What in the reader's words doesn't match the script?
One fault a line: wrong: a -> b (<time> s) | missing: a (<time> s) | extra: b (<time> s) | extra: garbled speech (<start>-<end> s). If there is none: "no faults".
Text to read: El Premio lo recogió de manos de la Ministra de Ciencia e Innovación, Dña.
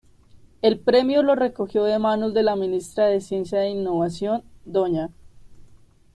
no faults